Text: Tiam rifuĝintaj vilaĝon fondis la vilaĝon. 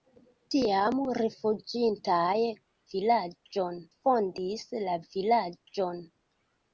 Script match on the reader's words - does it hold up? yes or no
yes